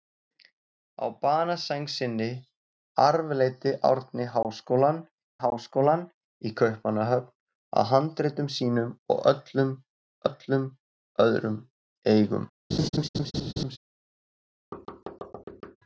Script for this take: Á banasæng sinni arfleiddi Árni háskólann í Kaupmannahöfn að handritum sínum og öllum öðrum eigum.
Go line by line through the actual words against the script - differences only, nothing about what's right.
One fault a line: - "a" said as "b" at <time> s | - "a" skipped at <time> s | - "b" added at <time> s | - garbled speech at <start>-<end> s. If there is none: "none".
- "háskólann" added at 5.4 s
- "öllum" added at 10.3 s